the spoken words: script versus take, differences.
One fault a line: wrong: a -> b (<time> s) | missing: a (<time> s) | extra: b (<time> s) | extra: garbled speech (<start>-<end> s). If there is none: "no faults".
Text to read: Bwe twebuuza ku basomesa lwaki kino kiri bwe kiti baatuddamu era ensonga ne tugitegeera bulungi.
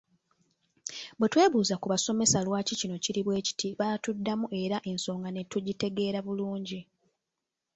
no faults